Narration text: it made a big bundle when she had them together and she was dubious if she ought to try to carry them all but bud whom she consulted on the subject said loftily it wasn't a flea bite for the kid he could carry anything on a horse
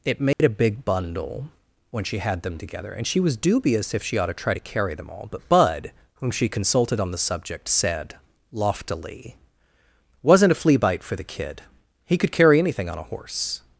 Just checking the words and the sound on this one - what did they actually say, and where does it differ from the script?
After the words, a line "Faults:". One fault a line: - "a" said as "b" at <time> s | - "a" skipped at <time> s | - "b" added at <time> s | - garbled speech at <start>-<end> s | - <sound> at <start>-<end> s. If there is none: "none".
it made a big bundle when she had them together and she was dubious if she ought to try to carry them all but bud whom she consulted on the subject said loftily wasn't a flea bite for the kid he could carry anything on a horse
Faults:
- dropout at 0.3-0.4 s
- "it" skipped at 9.4 s